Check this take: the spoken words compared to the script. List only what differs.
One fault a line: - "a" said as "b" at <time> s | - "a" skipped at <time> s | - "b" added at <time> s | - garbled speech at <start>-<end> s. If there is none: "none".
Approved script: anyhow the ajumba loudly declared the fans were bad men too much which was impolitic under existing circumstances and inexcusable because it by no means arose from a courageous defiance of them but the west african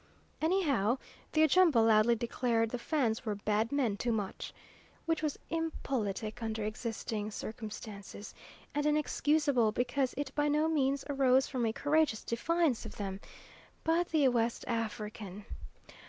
none